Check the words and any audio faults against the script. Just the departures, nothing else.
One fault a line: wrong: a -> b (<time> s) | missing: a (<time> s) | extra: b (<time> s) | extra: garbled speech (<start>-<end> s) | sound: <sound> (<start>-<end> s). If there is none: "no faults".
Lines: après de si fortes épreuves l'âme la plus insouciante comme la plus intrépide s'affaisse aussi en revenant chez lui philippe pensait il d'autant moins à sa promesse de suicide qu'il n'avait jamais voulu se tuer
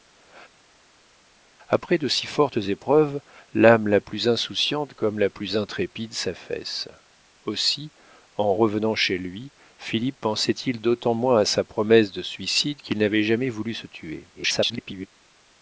extra: garbled speech (14.3-15.1 s)